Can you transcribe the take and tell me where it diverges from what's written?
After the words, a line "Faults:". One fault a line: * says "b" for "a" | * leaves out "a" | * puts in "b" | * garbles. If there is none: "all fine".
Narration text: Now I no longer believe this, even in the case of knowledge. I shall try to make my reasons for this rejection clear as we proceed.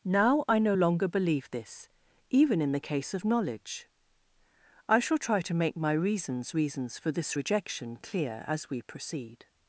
Now I no longer believe this, even in the case of knowledge. I shall try to make my reasons reasons for this rejection clear as we proceed.
Faults:
* puts in "reasons"